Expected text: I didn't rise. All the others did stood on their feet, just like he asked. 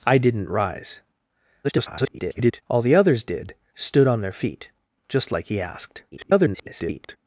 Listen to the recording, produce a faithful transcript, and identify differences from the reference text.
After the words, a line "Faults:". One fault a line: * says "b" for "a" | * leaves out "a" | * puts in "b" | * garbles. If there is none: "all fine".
I didn't rise. [garbled] All the others did stood on their feet, just like he asked. [garbled]
Faults:
* garbles
* garbles